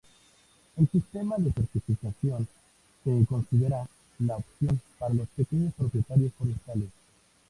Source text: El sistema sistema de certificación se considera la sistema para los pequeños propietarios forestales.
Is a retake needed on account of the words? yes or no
yes